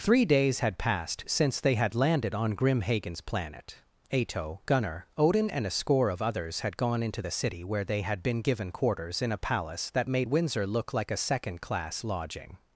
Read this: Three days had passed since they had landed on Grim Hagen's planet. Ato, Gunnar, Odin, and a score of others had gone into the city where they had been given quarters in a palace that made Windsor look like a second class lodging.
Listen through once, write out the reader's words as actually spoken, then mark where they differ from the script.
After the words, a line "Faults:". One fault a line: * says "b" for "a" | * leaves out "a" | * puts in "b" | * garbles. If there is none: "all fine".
Three days had passed since they had landed on Grim Hagen's planet. Ato, Gunnar, Odin, and a score of others had gone into the city where they had been given quarters in a palace that made Windsor look like a second class lodging.
Faults:
all fine